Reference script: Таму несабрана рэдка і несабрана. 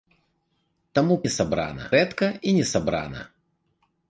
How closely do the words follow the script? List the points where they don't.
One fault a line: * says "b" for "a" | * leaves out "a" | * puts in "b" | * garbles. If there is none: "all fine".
all fine